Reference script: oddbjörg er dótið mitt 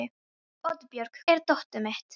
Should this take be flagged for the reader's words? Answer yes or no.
no